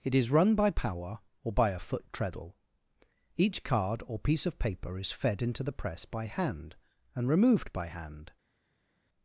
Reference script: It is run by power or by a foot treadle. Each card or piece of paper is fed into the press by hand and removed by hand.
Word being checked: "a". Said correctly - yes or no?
yes